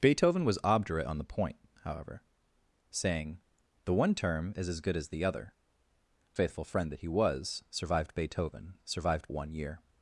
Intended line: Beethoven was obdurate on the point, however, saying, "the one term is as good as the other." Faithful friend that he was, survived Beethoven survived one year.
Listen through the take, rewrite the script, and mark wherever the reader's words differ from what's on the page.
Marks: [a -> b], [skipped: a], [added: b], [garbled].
Beethoven was obdurate on the point, however, saying, "the one term is as good as the other." Faithful friend that he was, survived Beethoven survived one year.